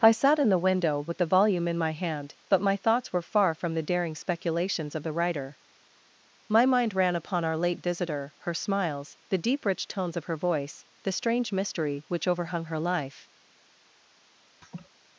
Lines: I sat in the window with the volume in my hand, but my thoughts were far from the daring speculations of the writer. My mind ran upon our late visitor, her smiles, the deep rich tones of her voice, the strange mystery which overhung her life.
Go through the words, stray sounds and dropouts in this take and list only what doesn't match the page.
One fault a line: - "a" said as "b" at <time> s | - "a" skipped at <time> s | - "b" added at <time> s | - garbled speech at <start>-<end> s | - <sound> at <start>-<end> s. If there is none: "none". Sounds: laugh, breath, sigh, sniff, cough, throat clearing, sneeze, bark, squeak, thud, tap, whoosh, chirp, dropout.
- laugh at 14.6-14.9 s